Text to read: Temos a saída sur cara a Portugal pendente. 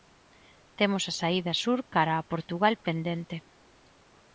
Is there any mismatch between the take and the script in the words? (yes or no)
no